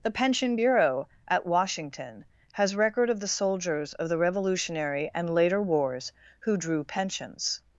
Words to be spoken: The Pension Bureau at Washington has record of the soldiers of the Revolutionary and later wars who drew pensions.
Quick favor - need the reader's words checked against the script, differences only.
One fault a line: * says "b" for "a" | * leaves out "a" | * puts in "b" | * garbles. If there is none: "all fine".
all fine